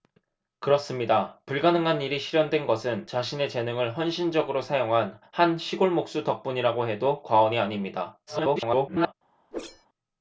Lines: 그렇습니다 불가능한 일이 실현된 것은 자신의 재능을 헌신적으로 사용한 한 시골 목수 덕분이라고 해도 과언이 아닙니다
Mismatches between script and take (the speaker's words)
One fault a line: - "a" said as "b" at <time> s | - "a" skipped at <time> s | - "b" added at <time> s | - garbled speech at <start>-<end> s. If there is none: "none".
- garbled speech at 8.3-9.1 s